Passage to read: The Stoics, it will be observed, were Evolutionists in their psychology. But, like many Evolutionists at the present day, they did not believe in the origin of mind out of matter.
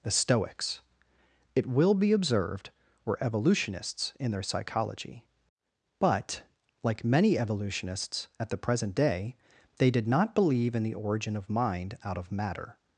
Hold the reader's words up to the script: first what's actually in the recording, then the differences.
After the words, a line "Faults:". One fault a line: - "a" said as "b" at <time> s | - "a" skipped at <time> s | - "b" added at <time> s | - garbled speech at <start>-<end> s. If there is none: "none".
The Stoics, it will be observed, were Evolutionists in their psychology. But, like many Evolutionists at the present day, they did not believe in the origin of mind out of matter.
Faults:
none